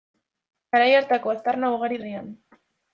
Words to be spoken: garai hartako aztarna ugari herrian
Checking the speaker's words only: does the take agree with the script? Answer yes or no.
yes